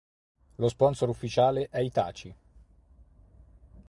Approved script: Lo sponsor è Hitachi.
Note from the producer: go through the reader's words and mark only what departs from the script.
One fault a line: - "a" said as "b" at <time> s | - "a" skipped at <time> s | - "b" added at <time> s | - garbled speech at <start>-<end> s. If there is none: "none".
- "ufficiale" added at 1.1 s